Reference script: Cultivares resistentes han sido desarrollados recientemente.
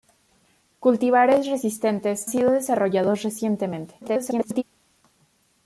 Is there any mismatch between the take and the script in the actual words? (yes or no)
yes